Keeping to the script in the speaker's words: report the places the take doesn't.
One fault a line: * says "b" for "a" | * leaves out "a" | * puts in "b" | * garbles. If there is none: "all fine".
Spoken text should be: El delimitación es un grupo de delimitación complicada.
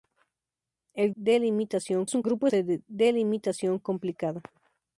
all fine